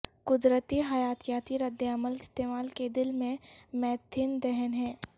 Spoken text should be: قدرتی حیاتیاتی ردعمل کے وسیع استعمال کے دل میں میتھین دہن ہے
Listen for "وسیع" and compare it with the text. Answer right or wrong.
wrong